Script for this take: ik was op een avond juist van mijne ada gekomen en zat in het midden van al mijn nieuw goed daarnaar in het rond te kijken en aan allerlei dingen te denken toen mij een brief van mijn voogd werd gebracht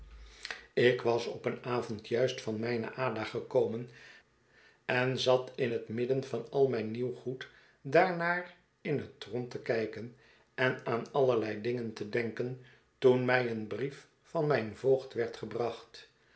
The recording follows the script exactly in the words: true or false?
true